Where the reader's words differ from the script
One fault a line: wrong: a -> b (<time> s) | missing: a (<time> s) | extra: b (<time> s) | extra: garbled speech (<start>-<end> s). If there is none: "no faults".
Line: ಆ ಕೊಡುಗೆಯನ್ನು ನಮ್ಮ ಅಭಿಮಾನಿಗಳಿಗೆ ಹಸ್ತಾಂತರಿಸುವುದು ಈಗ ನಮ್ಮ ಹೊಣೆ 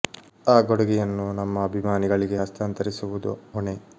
missing: ಈಗ ನಮ್ಮ (3.3 s)